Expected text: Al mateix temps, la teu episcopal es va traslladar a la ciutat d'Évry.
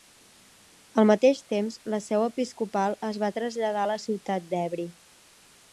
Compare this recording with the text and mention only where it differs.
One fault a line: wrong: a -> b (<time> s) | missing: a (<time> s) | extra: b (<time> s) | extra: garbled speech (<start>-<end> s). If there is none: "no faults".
wrong: teu -> seu (2.1 s)